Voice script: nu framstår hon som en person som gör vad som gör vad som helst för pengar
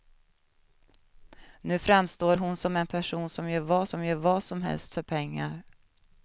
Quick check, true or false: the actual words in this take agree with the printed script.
true